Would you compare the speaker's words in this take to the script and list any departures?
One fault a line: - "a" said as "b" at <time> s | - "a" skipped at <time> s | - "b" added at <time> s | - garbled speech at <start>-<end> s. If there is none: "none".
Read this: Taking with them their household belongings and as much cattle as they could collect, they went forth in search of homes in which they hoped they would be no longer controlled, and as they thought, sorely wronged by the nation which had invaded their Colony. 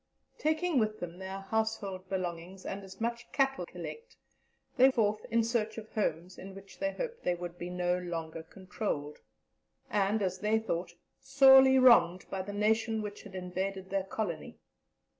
- "as they could" skipped at 3.7 s
- "went" skipped at 4.9 s